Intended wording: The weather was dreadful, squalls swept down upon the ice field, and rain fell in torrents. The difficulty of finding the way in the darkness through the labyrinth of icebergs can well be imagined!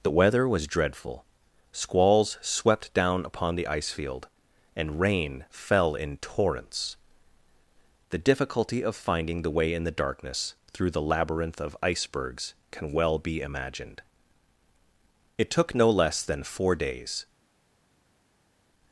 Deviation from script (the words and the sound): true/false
true